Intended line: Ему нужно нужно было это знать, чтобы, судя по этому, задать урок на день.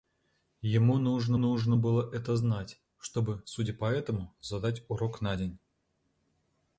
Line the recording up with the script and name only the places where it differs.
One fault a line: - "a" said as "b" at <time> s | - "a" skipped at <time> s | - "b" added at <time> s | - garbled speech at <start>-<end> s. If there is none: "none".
none